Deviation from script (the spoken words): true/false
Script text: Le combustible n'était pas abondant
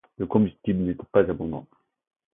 false